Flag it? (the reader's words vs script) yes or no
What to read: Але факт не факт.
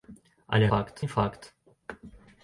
no